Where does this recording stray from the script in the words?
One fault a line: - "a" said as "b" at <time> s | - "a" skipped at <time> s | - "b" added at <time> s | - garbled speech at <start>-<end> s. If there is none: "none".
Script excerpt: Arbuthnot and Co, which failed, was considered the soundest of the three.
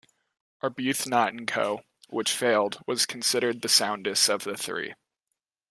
none